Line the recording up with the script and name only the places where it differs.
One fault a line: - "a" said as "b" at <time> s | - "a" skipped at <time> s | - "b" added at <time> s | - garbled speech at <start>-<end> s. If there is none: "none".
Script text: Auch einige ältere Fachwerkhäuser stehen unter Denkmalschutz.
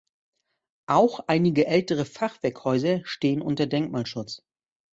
none